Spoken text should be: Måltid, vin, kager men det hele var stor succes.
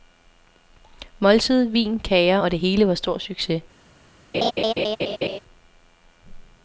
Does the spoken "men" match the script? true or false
false